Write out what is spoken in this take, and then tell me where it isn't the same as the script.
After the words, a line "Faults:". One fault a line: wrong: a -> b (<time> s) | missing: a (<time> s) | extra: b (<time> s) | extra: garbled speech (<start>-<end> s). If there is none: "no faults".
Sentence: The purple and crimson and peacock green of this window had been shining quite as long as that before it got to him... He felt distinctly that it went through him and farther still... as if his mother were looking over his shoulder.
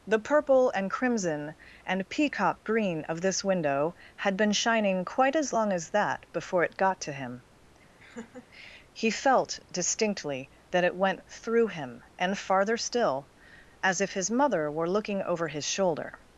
The purple and crimson and peacock green of this window had been shining quite as long as that before it got to him... He felt distinctly that it went through him and farther still... as if his mother were looking over his shoulder.
Faults:
no faults